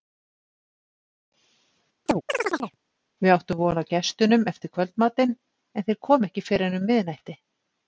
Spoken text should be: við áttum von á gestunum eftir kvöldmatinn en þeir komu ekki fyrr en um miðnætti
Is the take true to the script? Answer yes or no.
yes